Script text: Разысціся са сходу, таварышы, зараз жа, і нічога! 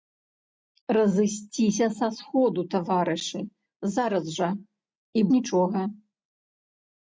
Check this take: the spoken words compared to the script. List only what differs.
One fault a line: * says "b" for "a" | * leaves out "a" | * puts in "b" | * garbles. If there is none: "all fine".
all fine